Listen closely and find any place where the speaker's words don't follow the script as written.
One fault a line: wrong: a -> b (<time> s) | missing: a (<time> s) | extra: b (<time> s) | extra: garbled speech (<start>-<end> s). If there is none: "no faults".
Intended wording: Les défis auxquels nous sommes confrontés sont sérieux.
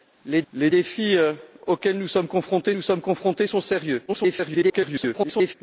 extra: les (0.5 s)
extra: nous sommes confrontés (2.7 s)
extra: garbled speech (4.1-5.5 s)